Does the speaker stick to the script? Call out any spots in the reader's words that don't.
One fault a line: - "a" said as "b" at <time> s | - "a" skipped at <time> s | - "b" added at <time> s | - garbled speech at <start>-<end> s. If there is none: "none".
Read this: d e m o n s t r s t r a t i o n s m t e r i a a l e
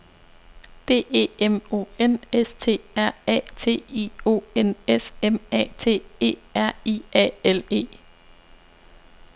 - "s t r" skipped at 3.1 s
- "a" added at 5.5 s
- "a" skipped at 7.3 s